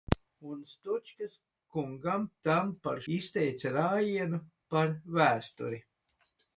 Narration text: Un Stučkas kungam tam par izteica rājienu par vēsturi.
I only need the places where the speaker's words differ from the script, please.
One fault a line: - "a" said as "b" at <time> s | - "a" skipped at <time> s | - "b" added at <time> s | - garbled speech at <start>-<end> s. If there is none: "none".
none